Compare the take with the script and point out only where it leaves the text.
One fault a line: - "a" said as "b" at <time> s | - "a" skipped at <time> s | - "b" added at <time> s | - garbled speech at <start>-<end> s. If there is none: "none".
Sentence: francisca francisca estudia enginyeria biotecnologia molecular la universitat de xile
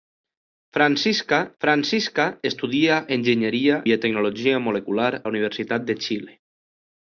none